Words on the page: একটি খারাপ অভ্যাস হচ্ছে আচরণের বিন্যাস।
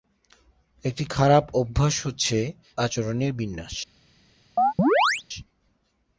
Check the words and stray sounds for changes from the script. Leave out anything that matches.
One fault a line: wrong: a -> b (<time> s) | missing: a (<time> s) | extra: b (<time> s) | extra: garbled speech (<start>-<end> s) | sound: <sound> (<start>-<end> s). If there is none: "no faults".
sound: chirp (4.6-5.2 s)